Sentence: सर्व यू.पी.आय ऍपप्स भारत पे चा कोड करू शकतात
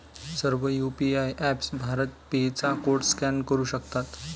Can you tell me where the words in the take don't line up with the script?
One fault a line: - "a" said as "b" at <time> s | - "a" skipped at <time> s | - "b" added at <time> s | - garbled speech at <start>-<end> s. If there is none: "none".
- "स्कॅन" added at 3.1 s